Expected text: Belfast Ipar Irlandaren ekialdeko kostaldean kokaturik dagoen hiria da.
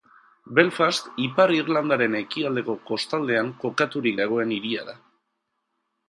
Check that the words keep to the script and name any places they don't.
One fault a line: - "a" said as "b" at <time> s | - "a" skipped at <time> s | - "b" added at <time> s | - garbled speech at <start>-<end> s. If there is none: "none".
none